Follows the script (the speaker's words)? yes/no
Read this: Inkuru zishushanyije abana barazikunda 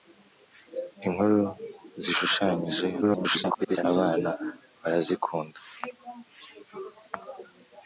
no